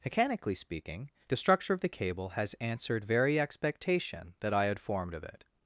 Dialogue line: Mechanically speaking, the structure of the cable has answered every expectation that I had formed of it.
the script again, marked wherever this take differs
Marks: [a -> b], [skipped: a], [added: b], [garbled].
Mechanically speaking, the structure of the cable has answered [every -> very] expectation that I had formed of it.